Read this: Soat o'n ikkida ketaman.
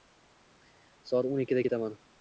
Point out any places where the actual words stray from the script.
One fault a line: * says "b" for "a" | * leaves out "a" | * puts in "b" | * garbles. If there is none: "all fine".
all fine